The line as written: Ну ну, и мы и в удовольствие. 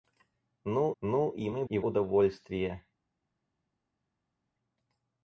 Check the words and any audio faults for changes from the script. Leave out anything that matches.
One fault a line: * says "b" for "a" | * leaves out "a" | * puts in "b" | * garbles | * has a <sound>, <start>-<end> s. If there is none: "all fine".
all fine